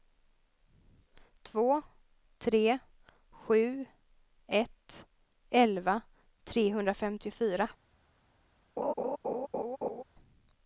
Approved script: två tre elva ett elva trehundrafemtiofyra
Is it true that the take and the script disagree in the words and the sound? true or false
true